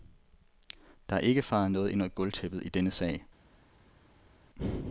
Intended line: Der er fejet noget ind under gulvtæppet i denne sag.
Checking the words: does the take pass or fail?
fail